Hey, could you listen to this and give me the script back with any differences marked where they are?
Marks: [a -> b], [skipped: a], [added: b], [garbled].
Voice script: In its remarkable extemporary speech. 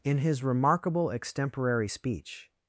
In [its -> his] remarkable extemporary speech.